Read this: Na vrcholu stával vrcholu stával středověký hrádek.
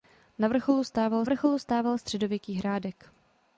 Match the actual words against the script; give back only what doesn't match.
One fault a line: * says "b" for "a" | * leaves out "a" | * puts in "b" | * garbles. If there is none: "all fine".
all fine